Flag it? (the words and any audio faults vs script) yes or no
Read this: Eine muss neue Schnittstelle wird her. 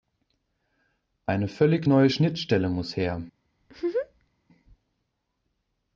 yes